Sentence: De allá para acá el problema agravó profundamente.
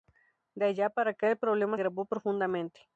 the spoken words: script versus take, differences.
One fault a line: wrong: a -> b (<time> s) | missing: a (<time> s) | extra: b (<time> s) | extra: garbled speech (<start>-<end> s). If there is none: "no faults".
no faults